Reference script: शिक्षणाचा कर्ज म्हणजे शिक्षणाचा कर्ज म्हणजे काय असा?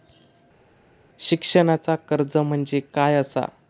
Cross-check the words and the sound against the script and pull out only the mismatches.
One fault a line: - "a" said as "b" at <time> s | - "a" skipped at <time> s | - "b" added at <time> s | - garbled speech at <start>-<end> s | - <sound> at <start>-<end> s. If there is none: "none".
- "शिक्षणाचा कर्ज म्हणजे" skipped at 2.8 s